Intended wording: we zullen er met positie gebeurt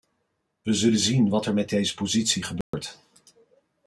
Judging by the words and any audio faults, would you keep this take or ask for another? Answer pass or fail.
fail